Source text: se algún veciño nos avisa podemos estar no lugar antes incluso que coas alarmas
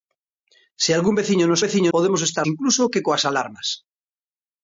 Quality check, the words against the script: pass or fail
fail